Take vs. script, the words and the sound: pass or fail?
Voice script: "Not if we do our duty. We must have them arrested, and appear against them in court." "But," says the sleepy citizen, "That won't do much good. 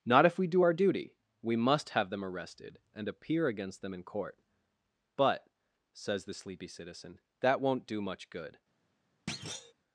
fail